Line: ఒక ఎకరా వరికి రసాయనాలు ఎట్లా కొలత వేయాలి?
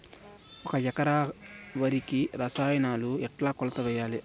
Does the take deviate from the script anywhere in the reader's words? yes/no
no